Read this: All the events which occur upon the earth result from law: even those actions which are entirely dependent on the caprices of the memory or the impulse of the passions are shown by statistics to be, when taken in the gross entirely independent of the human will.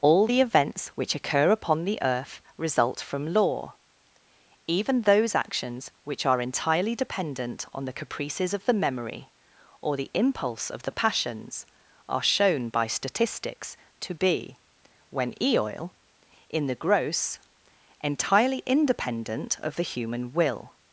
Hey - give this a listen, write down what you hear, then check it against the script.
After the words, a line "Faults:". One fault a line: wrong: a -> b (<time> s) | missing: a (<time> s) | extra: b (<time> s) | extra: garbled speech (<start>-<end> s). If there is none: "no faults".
All the events which occur upon the earth result from law: even those actions which are entirely dependent on the caprices of the memory or the impulse of the passions are shown by statistics to be, when eoil in the gross entirely independent of the human will.
Faults:
wrong: taken -> eoil (15.4 s)